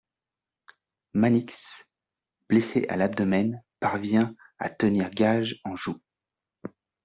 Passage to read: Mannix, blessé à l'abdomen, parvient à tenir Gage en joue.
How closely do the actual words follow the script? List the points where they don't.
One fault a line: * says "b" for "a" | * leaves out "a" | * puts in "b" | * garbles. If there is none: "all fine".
all fine